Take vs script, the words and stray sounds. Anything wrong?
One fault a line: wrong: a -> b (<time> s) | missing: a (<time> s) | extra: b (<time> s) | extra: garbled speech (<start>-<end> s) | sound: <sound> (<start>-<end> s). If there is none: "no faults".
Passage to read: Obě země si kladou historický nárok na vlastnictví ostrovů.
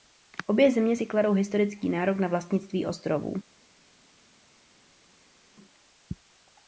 no faults